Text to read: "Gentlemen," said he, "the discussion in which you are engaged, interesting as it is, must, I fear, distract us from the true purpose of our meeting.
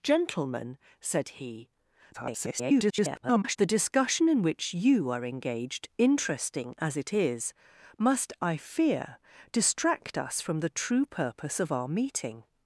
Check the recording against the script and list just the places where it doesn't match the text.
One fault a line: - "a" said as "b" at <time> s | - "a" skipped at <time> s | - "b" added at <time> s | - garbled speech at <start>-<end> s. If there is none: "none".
- garbled speech at 2.1-3.6 s